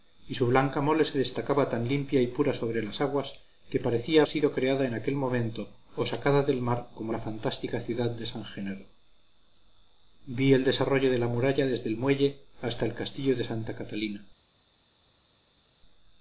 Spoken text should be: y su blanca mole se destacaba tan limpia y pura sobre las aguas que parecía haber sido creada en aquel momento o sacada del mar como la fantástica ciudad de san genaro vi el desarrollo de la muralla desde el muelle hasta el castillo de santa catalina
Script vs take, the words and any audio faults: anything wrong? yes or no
yes